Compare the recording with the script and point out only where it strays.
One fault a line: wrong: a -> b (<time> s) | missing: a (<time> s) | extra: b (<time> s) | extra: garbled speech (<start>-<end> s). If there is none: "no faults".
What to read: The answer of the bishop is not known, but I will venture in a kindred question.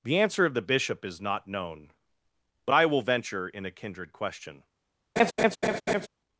no faults